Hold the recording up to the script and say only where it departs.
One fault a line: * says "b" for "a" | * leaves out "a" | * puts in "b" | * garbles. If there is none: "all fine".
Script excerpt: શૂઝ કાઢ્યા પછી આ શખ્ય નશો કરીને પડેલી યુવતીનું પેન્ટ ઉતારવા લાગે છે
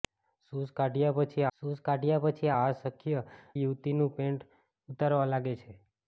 * says "શૂઝ કાઢ્યા પછી આ શખ્ય" for "આ શખ્ય નશો કરીને પડેલી"